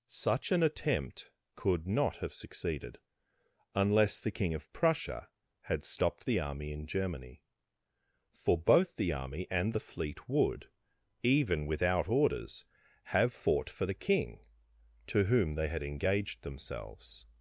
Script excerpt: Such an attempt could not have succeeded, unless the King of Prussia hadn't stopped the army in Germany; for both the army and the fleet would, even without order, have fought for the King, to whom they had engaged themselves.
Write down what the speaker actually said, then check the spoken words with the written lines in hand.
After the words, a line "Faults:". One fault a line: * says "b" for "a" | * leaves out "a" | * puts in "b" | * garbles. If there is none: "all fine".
Such an attempt could not have succeeded, unless the King of Prussia had stopped the army in Germany; for both the army and the fleet would, even without orders, have fought for the King, to whom they had engaged themselves.
Faults:
* says "had" for "hadn't"
* says "orders" for "order"